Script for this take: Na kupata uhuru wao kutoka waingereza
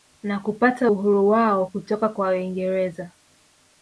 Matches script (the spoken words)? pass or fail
fail